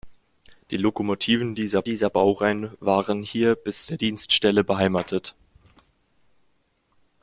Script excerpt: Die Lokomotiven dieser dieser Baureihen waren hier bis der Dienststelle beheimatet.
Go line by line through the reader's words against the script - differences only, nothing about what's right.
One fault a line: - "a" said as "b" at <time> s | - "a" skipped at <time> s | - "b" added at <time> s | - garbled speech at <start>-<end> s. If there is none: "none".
none